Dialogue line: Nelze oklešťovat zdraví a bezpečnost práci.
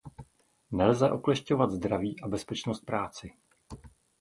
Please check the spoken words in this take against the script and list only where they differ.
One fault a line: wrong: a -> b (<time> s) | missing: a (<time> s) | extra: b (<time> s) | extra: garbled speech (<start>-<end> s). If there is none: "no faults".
no faults